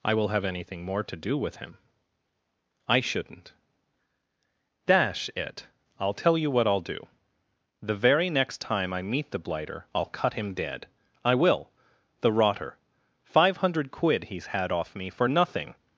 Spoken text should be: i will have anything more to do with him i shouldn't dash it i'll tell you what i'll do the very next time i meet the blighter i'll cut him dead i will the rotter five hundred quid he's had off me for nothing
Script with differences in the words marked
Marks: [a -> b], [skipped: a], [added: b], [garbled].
i will have anything more to do with him i shouldn't dash it i'll tell you what i'll do the very next time i meet the blighter i'll cut him dead i will the rotter five hundred quid he's had off me for nothing